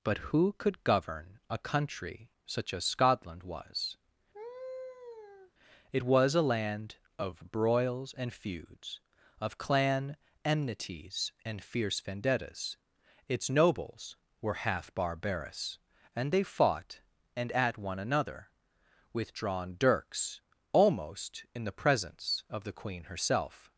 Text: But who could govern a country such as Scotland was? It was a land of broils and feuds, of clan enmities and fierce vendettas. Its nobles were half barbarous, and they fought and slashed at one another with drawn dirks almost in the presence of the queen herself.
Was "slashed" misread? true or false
true